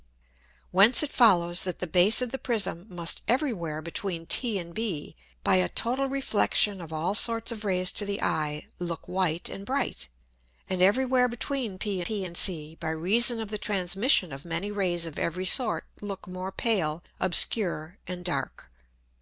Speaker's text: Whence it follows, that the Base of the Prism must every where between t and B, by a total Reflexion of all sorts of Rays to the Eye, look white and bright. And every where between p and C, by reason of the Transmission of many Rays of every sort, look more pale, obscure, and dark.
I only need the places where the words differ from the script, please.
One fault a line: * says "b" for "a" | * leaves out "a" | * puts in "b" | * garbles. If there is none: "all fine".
* puts in "p"